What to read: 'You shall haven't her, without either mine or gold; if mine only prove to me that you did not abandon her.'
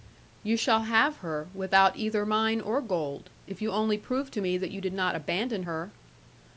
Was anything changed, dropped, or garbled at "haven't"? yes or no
yes